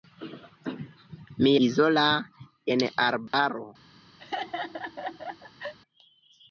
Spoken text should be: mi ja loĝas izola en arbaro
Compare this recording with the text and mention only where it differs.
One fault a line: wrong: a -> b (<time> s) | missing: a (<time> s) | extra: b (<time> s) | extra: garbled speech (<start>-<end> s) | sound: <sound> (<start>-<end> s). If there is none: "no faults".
missing: ja loĝas (1.5 s)
sound: dropout (3.3-3.3 s)
sound: laugh (4.2-5.7 s)